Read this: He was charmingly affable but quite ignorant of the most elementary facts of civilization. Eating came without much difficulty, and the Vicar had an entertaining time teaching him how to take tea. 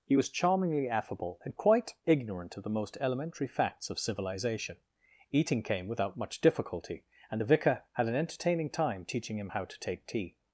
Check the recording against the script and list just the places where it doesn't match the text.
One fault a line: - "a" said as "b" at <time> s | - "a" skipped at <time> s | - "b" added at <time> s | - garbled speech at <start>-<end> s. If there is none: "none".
- "but" said as "and" at 1.4 s